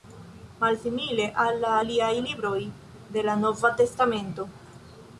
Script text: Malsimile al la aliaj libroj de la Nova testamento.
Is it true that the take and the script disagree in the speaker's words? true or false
false